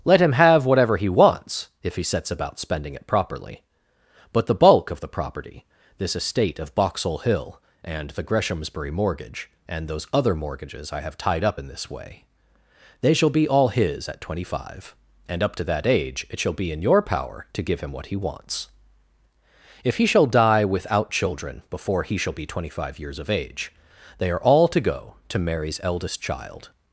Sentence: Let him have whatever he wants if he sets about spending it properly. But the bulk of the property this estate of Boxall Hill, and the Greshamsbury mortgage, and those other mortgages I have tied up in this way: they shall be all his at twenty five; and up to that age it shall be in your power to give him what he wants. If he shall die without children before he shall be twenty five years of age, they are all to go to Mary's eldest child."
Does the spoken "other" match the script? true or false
true